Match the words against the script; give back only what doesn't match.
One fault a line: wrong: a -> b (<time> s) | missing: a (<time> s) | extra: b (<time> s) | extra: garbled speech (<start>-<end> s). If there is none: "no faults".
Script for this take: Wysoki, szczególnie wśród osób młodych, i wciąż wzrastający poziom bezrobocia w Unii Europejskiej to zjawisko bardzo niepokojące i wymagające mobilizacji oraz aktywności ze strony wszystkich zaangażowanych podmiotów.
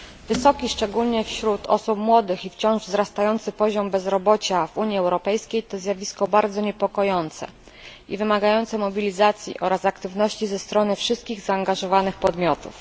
no faults